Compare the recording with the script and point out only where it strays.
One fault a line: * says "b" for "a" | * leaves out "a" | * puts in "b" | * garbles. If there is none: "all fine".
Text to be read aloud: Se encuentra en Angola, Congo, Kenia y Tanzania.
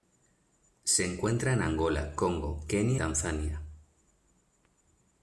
* leaves out "y"